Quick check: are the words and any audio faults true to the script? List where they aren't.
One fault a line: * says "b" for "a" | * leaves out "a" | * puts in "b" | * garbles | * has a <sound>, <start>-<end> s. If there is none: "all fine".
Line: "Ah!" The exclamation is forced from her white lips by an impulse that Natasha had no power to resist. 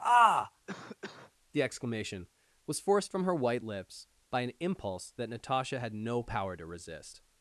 * has a cough, 0.7-1.3 s
* says "was" for "is"